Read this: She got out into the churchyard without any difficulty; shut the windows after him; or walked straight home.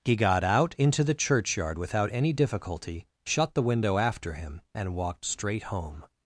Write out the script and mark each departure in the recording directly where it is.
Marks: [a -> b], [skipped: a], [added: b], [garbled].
[She -> He] got out into the churchyard without any difficulty; shut the [windows -> window] after him; [or -> and] walked straight home.